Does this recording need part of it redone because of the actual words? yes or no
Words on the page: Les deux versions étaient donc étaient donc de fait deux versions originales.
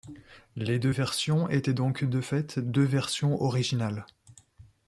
yes